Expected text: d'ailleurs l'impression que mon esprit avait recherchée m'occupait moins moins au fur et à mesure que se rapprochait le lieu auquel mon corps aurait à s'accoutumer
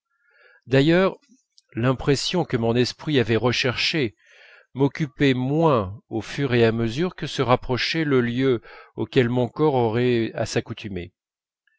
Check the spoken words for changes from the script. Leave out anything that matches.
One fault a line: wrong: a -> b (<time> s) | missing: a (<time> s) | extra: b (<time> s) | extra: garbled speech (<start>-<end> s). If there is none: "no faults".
missing: moins (6.0 s)